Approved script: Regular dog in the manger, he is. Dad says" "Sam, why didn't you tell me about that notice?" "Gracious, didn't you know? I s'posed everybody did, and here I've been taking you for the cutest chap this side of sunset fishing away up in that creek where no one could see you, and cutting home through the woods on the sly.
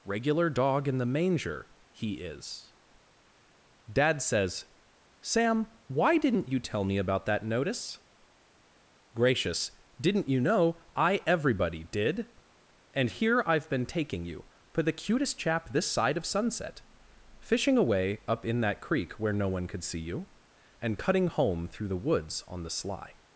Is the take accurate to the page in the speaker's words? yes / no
no